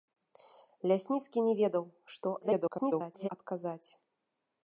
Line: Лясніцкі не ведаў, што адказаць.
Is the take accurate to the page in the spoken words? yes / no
no